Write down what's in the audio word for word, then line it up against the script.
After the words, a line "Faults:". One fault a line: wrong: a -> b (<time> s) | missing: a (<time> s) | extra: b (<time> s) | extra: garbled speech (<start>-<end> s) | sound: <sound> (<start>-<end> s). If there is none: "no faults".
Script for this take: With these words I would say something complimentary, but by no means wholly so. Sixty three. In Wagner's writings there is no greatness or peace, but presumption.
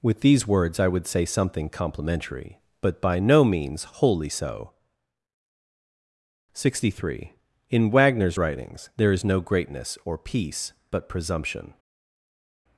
With these words I would say something complimentary, but by no means wholly so. Sixty three. In Wagner's writings there is no greatness or peace, but presumption.
Faults:
no faults